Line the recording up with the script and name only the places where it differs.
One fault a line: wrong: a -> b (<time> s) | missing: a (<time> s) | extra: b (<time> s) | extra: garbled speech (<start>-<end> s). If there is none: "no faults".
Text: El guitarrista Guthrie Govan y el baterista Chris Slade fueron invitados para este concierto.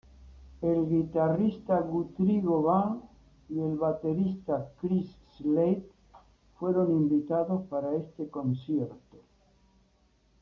no faults